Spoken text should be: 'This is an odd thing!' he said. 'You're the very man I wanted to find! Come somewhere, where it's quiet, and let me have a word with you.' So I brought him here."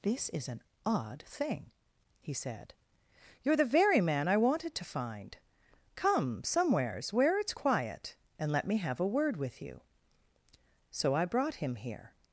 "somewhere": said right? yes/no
no